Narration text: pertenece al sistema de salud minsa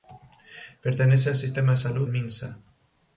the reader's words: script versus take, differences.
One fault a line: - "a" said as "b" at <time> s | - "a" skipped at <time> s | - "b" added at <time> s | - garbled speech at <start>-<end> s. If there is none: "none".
none